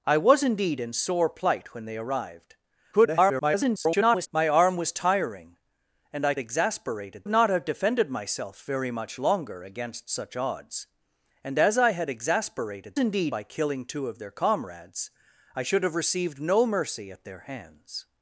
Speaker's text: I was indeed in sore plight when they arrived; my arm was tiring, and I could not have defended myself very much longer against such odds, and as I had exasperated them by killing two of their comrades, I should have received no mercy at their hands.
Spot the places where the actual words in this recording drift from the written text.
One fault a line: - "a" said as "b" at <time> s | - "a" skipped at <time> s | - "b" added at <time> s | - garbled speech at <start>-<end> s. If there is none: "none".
- garbled speech at 2.9-4.3 s
- "could" said as "exasperated" at 6.4 s
- "them" said as "indeed" at 13.0 s